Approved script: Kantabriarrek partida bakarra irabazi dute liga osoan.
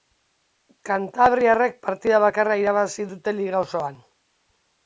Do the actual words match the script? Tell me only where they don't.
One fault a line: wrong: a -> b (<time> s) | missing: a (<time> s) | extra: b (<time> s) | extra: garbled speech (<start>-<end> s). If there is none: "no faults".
no faults